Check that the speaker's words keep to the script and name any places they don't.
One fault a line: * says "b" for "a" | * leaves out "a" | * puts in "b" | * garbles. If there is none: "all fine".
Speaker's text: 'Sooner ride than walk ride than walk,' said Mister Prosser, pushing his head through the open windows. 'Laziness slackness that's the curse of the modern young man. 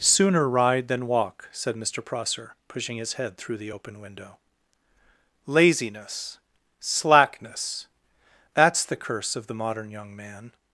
* leaves out "ride than walk"
* says "window" for "windows"